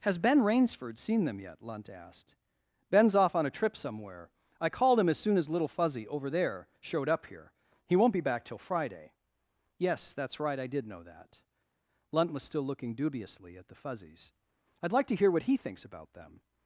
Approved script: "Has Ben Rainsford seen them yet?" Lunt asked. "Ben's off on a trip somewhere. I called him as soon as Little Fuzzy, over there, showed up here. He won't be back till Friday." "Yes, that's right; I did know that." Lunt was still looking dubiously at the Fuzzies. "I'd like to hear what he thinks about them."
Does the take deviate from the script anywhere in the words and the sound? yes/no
no